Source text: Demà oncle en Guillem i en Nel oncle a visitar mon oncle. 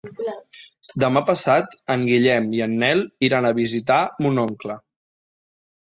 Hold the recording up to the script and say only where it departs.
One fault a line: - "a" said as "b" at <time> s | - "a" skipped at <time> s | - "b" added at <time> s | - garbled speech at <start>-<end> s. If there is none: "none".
- "oncle" said as "passat" at 1.3 s
- "oncle" said as "iran" at 3.3 s